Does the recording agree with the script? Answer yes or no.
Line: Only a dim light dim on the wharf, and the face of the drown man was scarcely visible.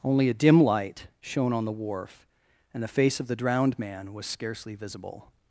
no